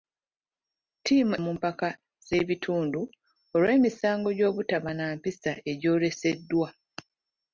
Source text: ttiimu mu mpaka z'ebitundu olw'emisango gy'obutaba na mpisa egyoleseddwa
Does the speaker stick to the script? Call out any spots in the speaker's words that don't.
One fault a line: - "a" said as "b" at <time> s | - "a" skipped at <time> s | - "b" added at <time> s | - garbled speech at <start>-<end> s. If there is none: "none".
none